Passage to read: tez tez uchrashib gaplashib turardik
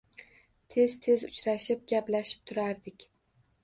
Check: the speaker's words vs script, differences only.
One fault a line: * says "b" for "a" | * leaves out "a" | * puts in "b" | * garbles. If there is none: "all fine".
all fine